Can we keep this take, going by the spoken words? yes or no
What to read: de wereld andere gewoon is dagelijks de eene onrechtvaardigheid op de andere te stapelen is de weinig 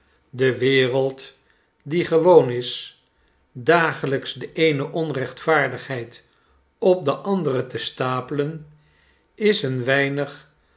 no